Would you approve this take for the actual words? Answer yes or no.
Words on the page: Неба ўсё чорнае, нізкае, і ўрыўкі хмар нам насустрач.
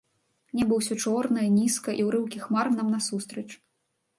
yes